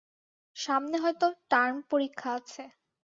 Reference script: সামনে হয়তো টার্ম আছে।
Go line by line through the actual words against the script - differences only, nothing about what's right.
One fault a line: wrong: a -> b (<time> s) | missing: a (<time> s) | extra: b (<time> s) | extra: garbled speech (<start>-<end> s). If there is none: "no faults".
extra: পরীক্ষা (1.9 s)